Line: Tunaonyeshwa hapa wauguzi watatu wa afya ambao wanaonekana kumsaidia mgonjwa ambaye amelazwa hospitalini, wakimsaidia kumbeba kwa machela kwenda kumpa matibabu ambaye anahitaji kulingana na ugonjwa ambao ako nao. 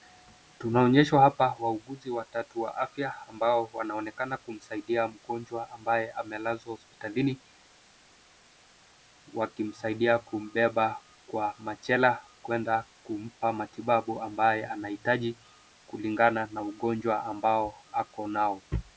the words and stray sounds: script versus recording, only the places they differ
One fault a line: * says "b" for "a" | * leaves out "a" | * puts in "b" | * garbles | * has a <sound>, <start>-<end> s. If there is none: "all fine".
all fine